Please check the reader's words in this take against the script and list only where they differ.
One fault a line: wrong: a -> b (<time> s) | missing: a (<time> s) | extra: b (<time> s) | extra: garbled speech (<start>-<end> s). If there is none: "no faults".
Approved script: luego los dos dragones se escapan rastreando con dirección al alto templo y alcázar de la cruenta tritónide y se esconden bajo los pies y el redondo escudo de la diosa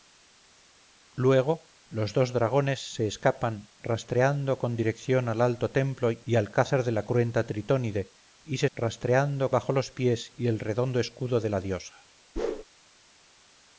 wrong: esconden -> rastreando (8.8 s)